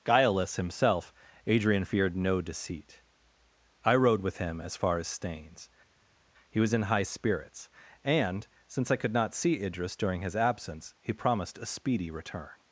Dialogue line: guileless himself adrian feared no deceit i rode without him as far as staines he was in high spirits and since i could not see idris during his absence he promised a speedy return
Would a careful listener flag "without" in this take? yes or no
yes